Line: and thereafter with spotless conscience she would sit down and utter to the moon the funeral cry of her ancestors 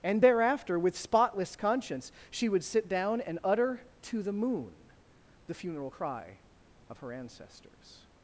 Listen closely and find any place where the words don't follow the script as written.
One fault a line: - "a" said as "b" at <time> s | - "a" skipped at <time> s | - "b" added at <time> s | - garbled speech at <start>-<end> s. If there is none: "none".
none